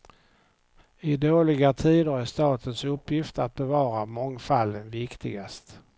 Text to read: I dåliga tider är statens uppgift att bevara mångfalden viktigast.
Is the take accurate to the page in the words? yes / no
yes